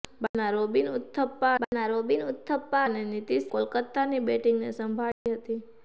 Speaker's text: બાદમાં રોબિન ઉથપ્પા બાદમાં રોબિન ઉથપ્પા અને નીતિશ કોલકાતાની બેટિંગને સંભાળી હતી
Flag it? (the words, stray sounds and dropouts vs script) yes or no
yes